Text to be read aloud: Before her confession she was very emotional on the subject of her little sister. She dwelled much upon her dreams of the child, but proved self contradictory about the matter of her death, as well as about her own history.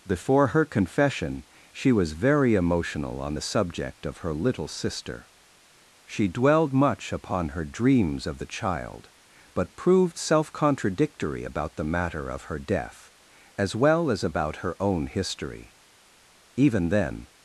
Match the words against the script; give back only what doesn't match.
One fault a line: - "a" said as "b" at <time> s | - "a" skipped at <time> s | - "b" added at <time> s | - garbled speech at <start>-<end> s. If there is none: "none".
- "Even then" added at 16.6 s